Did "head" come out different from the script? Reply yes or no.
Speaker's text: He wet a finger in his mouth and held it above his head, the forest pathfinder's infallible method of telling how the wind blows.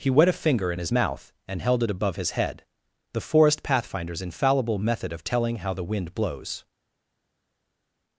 no